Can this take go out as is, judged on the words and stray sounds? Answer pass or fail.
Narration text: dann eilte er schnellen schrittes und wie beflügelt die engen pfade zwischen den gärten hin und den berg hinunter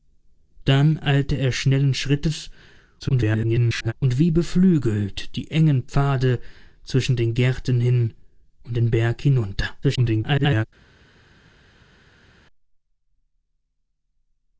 fail